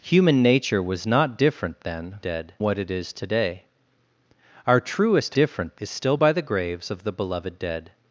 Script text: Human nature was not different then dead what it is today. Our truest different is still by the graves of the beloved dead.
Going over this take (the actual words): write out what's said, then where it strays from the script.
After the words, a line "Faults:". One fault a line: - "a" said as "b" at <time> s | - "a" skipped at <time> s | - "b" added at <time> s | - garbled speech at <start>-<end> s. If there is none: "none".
Human nature was not different then dead what it is today. Our truest different is still by the graves of the beloved dead.
Faults:
none